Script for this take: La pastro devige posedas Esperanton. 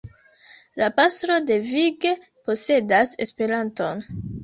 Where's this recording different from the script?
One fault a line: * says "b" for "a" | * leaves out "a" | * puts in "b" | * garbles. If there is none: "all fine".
all fine